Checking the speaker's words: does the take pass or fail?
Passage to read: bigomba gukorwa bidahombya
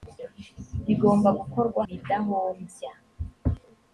pass